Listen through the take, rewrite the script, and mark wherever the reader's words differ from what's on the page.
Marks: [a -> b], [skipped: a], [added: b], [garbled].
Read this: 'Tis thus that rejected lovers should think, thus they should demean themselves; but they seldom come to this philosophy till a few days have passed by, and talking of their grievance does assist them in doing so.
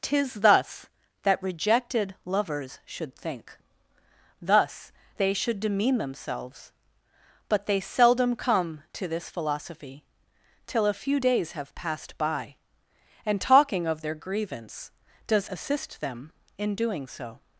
'Tis thus that rejected lovers should think, thus they should demean themselves; but they seldom come to this philosophy till a few days have passed by, and talking of their grievance does assist them in doing so.